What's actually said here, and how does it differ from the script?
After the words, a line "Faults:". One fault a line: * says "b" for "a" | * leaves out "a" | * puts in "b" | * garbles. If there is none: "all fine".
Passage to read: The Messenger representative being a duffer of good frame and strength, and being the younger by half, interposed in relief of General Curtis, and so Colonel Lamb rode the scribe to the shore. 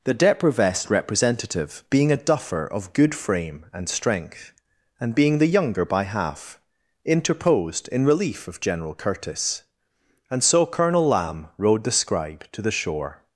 The Deprivest representative being a duffer of good frame and strength, and being the younger by half, interposed in relief of General Curtis, and so Colonel Lamb rode the scribe to the shore.
Faults:
* says "Deprivest" for "Messenger"